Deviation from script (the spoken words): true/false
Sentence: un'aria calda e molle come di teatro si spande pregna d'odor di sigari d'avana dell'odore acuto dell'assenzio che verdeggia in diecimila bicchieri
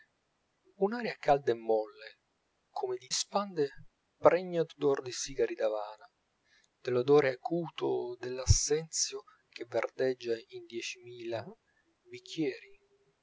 true